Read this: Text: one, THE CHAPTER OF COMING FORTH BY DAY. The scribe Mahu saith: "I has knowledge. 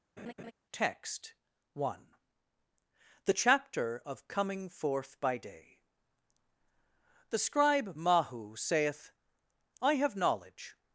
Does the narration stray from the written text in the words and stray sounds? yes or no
yes